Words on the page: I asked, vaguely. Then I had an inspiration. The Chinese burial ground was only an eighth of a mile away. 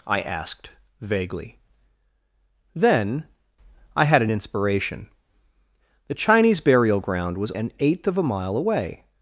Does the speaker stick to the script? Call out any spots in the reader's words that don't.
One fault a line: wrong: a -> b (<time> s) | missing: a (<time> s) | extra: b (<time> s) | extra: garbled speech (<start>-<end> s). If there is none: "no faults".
missing: only (7.5 s)